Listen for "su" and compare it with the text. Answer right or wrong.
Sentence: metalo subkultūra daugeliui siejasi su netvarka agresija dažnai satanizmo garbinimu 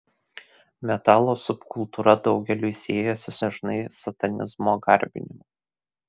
wrong